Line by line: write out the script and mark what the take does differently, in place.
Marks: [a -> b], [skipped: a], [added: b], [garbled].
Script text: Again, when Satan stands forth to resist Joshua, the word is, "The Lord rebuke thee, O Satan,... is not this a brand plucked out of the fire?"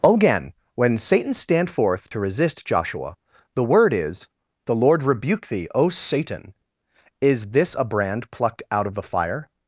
Again, when Satan [stands -> stand] forth to resist Joshua, the word is, "The Lord rebuke thee, O Satan,... is [skipped: not] this a brand plucked out of the fire?"